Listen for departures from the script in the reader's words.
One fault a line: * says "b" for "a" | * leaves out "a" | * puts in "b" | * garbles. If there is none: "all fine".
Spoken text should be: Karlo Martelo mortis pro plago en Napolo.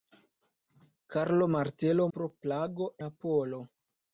* leaves out "mortis"
* leaves out "en"